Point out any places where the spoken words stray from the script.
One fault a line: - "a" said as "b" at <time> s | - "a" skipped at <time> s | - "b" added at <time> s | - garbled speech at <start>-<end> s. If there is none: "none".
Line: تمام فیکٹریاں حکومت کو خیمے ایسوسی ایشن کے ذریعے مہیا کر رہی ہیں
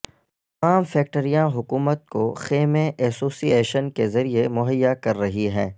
none